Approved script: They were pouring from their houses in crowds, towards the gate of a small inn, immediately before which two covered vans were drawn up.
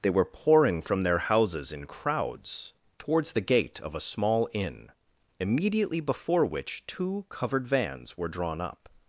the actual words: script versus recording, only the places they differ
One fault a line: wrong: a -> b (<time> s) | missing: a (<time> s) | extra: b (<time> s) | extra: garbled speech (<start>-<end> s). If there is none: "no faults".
no faults